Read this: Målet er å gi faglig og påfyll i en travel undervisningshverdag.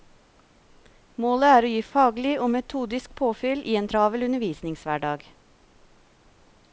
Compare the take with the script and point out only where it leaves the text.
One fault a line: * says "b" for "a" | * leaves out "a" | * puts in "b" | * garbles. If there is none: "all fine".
* puts in "metodisk"